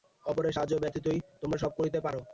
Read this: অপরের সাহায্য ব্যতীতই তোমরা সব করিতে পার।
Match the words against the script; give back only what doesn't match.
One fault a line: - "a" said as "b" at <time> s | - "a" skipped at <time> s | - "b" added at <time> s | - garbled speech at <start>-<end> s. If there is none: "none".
none